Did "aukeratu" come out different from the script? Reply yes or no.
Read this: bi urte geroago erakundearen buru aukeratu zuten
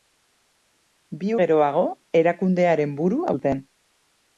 yes